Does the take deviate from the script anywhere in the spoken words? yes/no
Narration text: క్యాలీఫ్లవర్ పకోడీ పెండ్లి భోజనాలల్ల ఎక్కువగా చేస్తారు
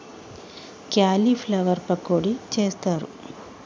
yes